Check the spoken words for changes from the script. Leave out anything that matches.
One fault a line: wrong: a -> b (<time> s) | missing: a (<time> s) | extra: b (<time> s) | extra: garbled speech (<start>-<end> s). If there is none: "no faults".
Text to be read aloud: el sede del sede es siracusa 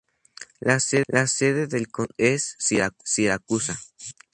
wrong: el -> la (0.6 s)
wrong: sede -> condado (1.9 s)